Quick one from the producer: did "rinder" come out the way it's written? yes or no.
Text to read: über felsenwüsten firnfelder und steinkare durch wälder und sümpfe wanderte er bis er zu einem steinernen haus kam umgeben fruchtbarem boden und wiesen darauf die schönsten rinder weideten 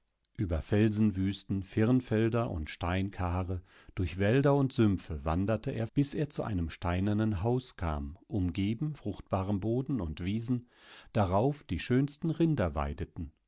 yes